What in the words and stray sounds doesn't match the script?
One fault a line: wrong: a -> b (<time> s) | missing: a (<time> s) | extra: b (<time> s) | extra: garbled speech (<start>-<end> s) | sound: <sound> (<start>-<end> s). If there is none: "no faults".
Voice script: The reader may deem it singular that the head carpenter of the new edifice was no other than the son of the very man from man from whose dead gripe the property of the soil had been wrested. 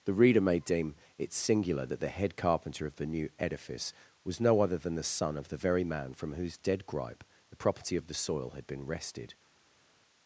missing: man from (6.3 s)